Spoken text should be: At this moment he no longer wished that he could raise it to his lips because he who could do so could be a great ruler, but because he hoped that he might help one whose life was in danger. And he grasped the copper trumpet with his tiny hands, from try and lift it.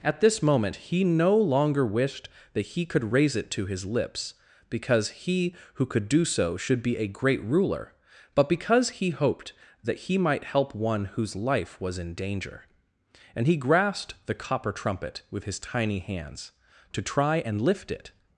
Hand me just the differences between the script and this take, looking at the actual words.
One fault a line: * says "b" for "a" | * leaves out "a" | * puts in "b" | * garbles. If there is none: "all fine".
* says "should" for "could"
* says "to" for "from"